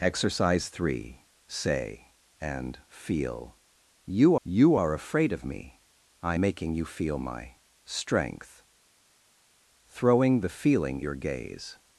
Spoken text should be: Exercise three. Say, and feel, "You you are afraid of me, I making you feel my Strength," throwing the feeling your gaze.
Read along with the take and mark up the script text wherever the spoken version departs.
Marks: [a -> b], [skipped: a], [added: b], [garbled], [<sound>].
Exercise three. Say, and feel, "You you are afraid of me, I making you feel my Strength," throwing the feeling your gaze.